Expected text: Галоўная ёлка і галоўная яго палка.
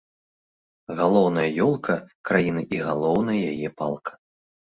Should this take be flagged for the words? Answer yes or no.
yes